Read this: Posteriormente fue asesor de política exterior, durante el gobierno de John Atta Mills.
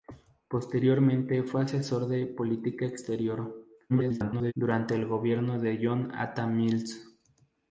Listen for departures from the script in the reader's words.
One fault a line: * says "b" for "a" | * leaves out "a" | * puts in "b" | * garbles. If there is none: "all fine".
* garbles